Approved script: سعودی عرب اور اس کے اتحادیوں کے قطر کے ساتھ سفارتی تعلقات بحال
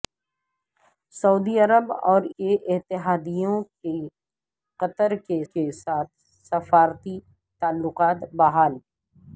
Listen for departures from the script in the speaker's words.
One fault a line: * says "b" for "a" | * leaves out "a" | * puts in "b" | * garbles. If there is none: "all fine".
* leaves out "اس"
* puts in "کے"